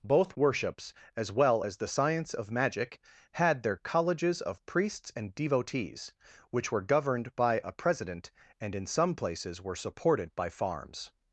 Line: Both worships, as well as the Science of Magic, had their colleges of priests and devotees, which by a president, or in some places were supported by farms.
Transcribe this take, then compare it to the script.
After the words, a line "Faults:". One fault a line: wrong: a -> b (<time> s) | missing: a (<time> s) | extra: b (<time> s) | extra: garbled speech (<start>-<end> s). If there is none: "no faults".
Both worships, as well as the Science of Magic, had their colleges of priests and devotees, which were governed by a president, and in some places were supported by farms.
Faults:
extra: were governed (6.7 s)
wrong: or -> and (8.6 s)